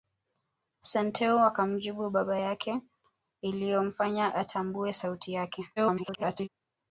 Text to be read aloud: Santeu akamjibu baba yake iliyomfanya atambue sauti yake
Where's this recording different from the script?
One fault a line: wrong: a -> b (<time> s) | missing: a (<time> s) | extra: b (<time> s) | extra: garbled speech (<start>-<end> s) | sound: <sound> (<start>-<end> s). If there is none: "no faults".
extra: garbled speech (5.8-6.5 s)